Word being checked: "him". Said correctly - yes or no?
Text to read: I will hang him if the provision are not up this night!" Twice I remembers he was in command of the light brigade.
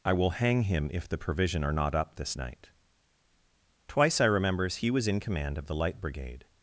yes